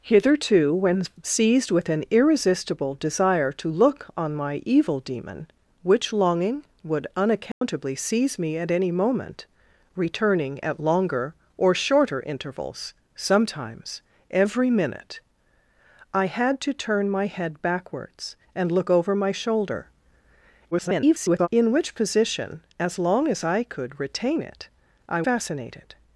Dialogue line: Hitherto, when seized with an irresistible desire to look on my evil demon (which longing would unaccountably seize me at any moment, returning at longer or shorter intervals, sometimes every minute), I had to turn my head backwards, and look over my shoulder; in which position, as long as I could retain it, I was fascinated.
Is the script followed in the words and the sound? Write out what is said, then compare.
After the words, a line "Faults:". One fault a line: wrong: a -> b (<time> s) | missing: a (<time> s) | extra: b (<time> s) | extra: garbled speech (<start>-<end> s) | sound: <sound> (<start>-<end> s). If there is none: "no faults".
Hitherto, when seized with an irresistible desire to look on my evil demon (which longing would unaccountably seize me at any moment, returning at longer or shorter intervals, sometimes every minute), I had to turn my head backwards, and look over my shoulder; [garbled] in which position, as long as I could retain it, I fascinated.
Faults:
sound: dropout (7.5-7.6 s)
extra: garbled speech (20.7-21.5 s)
missing: was (25.2 s)